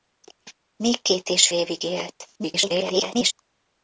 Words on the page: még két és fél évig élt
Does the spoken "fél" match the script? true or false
false